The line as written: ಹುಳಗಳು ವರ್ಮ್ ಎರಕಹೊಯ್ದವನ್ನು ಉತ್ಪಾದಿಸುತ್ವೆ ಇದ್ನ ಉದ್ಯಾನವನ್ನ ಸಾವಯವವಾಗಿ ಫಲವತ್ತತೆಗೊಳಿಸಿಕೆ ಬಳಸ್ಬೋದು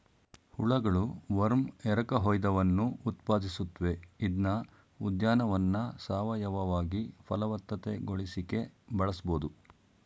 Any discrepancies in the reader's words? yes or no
no